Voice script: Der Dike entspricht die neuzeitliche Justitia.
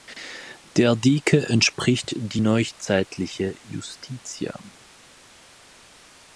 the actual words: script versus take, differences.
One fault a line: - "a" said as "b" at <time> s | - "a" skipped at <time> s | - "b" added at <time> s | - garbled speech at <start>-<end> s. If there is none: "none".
none